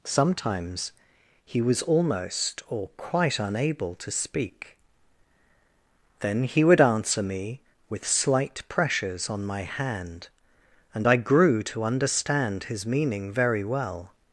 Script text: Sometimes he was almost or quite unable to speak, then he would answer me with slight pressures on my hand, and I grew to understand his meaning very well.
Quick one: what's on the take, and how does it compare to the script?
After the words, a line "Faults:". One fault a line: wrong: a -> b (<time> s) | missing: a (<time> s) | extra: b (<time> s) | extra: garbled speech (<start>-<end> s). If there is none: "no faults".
Sometimes he was almost or quite unable to speak, then he would answer me with slight pressures on my hand, and I grew to understand his meaning very well.
Faults:
no faults